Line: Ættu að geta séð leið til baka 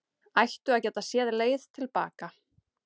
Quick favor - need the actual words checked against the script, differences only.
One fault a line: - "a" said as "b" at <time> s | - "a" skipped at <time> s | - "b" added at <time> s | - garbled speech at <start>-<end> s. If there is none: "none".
none